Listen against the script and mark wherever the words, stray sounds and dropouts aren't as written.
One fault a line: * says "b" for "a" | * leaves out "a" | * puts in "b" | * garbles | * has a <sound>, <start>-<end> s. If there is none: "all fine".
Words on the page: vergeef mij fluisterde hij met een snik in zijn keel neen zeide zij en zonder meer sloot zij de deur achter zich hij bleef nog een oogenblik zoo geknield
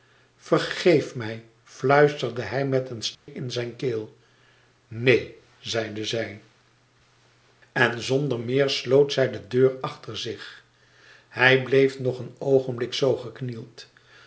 * has a dropout, 3.1-3.3 s